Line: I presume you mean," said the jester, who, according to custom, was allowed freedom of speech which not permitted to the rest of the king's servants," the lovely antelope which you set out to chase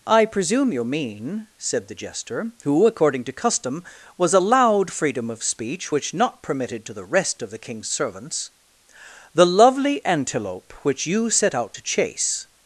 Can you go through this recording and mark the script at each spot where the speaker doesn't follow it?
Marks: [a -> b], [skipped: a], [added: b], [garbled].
I presume you mean," said the jester, who, according to custom, was allowed freedom of speech which not permitted to the rest of the king's servants," the lovely antelope which you set out to chase